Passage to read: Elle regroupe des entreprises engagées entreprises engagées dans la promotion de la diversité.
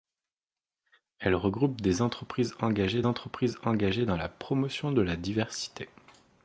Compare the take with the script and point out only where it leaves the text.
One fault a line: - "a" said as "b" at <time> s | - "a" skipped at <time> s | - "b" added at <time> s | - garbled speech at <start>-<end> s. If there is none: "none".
none